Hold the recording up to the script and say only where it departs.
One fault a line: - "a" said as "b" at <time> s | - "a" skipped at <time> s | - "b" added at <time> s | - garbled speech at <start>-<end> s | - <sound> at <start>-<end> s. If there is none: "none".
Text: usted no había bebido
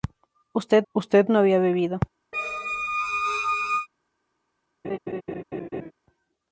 - "usted" added at 0.9 s
- squeak at 2.3-3.9 s
- laugh at 4.8-5.9 s